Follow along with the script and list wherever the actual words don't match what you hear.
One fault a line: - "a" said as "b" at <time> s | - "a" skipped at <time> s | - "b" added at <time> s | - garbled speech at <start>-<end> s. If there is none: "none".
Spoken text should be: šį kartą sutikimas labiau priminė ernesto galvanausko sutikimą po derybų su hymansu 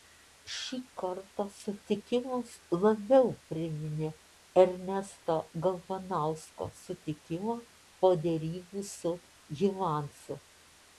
none